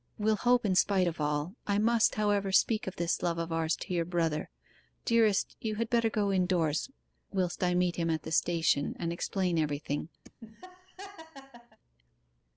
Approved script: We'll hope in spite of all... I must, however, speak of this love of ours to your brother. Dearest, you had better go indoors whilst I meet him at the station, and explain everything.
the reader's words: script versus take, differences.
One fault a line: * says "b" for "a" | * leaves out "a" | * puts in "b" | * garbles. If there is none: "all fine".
all fine